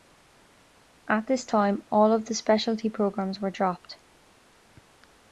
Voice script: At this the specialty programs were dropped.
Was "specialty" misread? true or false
false